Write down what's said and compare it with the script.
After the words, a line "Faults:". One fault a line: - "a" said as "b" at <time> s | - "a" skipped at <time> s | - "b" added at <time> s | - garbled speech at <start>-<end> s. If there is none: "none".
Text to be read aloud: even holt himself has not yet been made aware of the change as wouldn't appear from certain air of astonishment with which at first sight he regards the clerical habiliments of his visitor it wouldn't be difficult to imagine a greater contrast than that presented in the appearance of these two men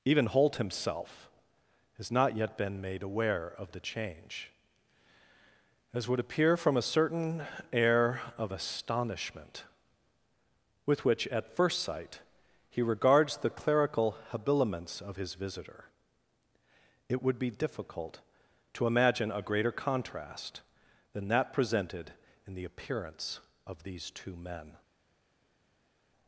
even holt himself has not yet been made aware of the change as would appear from a certain air of astonishment with which at first sight he regards the clerical habiliments of his visitor it would be difficult to imagine a greater contrast than that presented in the appearance of these two men
Faults:
- "wouldn't" said as "would" at 6.1 s
- "a" added at 6.8 s
- "wouldn't" said as "would" at 17.2 s